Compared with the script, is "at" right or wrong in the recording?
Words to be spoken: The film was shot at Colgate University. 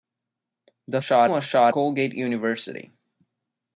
wrong